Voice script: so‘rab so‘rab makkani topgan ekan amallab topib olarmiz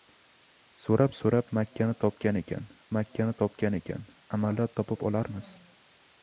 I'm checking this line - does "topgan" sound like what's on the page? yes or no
yes